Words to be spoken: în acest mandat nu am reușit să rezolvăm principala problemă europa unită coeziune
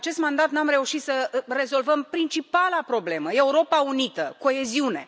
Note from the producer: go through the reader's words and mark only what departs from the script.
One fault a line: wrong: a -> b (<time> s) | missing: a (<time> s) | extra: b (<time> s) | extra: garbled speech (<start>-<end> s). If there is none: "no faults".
no faults